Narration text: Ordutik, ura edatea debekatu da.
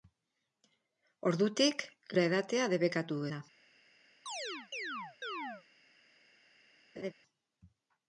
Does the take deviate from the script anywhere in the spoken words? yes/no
no